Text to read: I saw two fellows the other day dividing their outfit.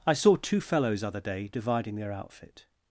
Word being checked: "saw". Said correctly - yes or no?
yes